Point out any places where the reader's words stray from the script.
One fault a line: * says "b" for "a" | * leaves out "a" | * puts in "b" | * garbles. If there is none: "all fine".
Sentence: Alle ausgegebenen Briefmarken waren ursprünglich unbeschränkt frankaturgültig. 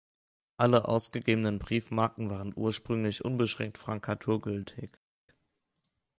all fine